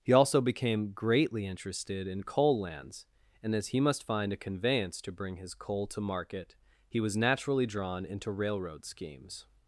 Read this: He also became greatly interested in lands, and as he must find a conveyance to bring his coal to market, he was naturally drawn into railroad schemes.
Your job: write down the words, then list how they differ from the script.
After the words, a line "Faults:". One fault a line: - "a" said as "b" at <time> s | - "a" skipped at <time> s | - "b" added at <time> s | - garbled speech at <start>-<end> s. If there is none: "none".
He also became greatly interested in coal lands, and as he must find a conveyance to bring his coal to market, he was naturally drawn into railroad schemes.
Faults:
- "coal" added at 2.2 s